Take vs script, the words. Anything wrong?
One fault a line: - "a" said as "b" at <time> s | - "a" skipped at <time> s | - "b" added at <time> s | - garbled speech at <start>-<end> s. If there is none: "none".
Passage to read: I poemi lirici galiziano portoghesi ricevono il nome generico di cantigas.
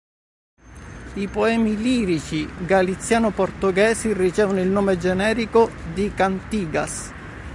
none